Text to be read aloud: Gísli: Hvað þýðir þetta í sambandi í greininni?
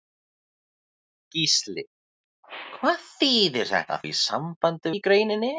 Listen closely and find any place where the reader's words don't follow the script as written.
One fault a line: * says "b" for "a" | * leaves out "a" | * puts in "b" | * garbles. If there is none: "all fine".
all fine